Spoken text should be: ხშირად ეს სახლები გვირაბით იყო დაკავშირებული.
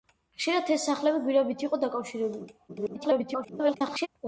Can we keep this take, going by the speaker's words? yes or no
no